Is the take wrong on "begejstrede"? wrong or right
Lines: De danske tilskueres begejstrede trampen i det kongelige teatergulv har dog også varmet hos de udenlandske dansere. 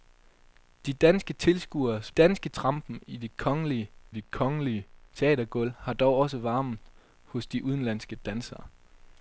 wrong